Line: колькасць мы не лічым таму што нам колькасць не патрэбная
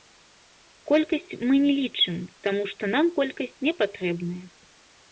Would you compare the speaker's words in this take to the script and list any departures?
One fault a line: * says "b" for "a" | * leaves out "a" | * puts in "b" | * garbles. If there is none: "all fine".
all fine